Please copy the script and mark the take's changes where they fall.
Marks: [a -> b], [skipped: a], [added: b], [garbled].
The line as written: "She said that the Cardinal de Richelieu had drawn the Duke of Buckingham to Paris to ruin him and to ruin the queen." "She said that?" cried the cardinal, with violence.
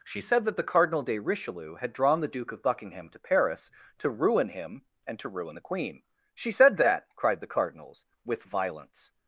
"She said that the Cardinal de Richelieu had drawn the Duke of Buckingham to Paris to ruin him and to ruin the queen." "She said that?" cried the [cardinal, -> cardinals] with violence.